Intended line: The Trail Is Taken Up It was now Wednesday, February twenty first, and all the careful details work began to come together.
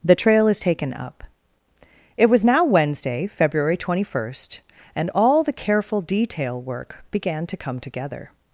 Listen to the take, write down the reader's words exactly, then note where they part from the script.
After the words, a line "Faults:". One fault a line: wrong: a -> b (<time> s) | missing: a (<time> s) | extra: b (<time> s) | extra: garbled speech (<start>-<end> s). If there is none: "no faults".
The Trail Is Taken Up It was now Wednesday, February twenty first, and all the careful detail work began to come together.
Faults:
wrong: details -> detail (6.0 s)